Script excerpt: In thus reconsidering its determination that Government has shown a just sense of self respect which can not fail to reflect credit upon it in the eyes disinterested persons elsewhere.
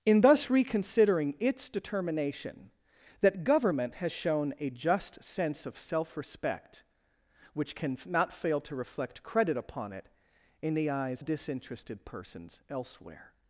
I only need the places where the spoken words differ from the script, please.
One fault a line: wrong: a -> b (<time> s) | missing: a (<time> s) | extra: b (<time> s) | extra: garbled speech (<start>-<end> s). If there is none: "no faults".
no faults